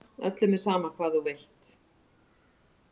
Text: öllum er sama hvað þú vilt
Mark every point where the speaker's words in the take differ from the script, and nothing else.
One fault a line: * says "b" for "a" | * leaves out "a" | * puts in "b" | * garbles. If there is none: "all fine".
all fine